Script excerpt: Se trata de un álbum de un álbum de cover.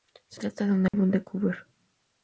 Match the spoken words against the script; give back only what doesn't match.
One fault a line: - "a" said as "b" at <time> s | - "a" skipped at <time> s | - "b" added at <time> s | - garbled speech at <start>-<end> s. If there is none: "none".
- "un álbum de" skipped at 1.2 s